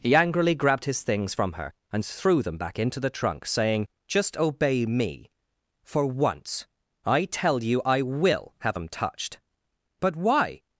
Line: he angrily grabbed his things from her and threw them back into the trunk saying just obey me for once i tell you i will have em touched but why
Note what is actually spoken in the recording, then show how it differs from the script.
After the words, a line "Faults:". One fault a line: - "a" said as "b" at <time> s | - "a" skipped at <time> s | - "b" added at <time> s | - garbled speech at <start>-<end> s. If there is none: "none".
he angrily grabbed his things from her and threw them back into the trunk saying just obey me for once i tell you i will have em touched but why
Faults:
none